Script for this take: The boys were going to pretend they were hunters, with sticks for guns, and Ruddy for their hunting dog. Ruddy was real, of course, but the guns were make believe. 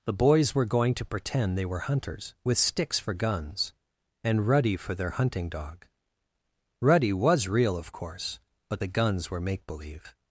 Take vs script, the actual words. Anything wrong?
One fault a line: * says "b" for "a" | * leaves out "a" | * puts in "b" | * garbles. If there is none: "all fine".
all fine